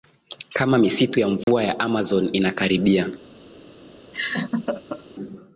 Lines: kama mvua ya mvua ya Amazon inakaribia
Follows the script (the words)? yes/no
no